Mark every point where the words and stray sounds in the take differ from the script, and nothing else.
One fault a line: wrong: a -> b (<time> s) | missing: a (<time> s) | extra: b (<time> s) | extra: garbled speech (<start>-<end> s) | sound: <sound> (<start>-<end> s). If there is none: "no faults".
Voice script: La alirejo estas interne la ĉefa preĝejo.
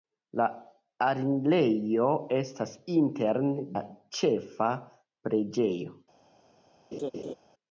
sound: laugh (6.9-7.3 s)